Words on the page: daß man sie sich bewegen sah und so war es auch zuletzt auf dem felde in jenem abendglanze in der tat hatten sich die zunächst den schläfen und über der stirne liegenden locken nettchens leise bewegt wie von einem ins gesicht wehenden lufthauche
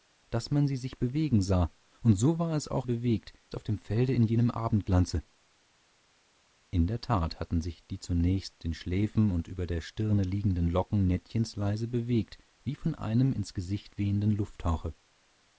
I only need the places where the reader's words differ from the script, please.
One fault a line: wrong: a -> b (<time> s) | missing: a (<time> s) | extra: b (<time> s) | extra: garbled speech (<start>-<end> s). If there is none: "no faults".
wrong: zuletzt -> bewegt (2.8 s)